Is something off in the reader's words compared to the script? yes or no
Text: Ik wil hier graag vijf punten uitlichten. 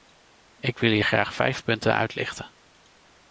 no